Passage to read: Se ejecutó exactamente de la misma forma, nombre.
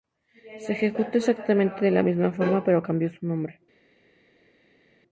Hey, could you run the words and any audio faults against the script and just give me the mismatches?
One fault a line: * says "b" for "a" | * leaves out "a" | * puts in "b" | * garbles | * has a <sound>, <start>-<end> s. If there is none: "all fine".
* puts in "pero cambió su"